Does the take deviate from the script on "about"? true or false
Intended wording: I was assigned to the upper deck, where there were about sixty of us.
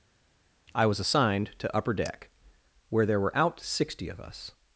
true